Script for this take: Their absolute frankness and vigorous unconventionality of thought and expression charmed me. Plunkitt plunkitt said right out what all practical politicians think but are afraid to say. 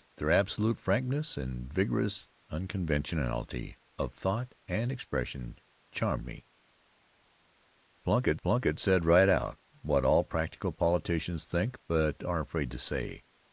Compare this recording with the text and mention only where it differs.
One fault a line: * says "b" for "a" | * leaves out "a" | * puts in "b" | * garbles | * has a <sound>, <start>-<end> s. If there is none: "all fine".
all fine